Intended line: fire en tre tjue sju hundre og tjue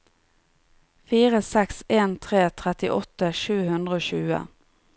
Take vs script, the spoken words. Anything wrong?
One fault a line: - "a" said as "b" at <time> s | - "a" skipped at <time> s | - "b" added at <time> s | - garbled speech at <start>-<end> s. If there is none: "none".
- "seks" added at 1.5 s
- "tjue" said as "trettiåtte" at 2.6 s